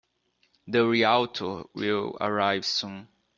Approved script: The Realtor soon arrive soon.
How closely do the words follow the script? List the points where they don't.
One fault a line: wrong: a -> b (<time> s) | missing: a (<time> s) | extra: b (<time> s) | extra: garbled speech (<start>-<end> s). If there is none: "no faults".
wrong: soon -> will (1.8 s)